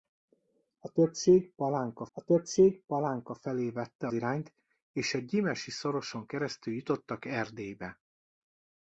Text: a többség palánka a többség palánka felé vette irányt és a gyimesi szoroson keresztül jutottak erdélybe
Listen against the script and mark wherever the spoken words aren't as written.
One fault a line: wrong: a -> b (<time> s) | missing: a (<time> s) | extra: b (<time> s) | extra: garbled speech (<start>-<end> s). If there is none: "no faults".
no faults